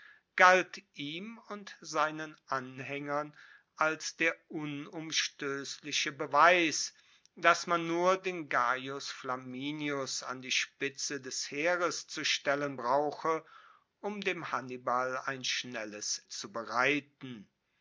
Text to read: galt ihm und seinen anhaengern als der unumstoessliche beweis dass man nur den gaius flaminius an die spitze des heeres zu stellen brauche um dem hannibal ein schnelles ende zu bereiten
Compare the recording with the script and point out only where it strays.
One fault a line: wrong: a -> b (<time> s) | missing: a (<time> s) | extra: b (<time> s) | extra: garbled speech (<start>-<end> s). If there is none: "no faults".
missing: ende (16.2 s)